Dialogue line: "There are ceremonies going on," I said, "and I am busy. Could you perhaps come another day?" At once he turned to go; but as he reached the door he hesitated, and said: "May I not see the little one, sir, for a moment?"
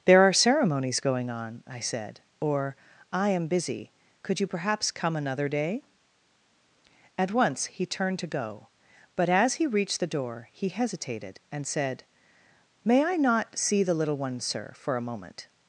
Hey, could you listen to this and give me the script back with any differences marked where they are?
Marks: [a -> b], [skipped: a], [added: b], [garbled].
"There are ceremonies going on," I said, ["and -> or] I am busy. Could you perhaps come another day?" At once he turned to go; but as he reached the door he hesitated, and said: "May I not see the little one, sir, for a moment?"